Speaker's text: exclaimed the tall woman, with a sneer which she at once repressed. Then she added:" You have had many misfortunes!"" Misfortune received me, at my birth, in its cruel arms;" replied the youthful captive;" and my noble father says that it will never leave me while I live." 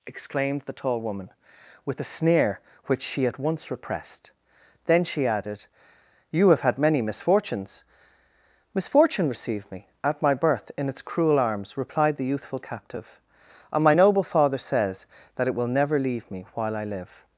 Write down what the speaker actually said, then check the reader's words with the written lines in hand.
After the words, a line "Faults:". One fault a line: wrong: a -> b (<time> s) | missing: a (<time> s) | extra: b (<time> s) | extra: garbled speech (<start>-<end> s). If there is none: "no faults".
exclaimed the tall woman, with a sneer which she at once repressed. Then she added:" You have had many misfortunes!"" Misfortune received me, at my birth, in its cruel arms;" replied the youthful captive;" and my noble father says that it will never leave me while I live."
Faults:
no faults